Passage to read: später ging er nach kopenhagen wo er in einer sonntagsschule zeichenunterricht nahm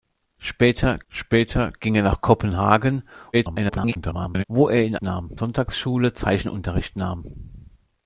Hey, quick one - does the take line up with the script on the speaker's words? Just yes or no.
no